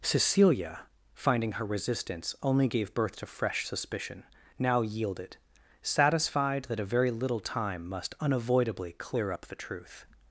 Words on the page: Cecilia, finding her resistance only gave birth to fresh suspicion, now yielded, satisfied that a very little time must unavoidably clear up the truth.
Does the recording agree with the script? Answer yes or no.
yes